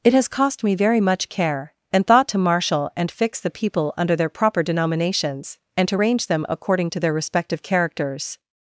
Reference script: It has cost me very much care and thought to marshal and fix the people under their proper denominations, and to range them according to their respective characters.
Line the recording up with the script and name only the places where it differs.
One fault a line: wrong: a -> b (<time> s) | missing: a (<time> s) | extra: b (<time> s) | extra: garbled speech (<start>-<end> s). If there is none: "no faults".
no faults